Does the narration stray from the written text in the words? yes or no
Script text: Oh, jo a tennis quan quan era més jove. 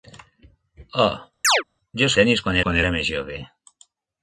no